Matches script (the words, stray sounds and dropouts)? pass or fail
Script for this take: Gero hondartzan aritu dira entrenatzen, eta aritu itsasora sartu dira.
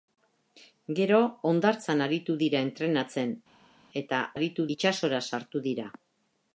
pass